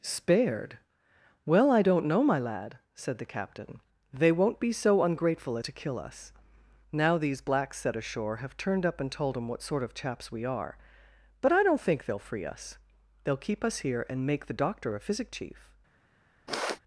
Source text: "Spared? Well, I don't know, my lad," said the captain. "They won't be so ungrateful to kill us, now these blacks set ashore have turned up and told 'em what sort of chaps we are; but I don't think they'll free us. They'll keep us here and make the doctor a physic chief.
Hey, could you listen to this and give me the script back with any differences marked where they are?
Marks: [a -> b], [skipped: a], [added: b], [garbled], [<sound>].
"Spared? Well, I don't know, my lad," said the captain. "They won't be so ungrateful to kill us, now these blacks set ashore have turned up and told 'em what sort of chaps we are; but I don't think they'll free us. They'll keep us here and make the doctor a physic chief. [sniff]